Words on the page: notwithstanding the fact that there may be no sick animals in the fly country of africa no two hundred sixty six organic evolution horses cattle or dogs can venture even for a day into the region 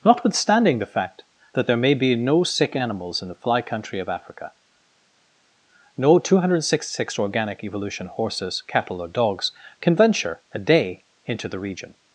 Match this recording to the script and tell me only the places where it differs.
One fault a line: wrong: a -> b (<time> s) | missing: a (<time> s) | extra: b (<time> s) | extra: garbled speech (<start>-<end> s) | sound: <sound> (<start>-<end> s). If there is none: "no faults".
missing: even for (10.4 s)